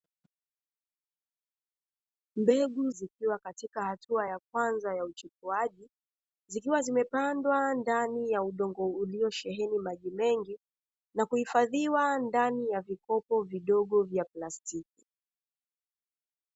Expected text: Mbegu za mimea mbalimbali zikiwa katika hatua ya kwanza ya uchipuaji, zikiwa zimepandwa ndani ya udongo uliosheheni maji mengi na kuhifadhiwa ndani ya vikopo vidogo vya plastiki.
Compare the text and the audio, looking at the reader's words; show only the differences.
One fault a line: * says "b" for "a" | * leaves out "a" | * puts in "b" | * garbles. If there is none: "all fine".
* leaves out "za mimea mbalimbali"